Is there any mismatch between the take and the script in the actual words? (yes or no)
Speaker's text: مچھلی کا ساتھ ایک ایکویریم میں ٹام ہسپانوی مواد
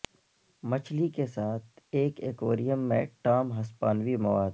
yes